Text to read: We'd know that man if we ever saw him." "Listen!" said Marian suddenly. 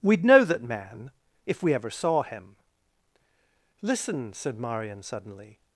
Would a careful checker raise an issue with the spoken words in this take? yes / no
no